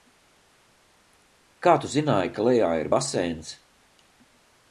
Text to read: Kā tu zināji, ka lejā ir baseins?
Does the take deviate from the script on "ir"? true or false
false